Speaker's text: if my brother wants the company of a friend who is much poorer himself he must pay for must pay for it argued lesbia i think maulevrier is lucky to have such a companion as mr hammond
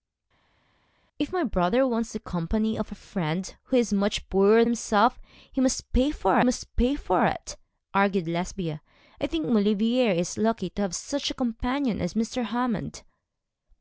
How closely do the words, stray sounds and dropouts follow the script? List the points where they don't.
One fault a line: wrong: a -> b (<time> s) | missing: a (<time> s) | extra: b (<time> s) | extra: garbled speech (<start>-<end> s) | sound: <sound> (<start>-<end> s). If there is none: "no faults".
no faults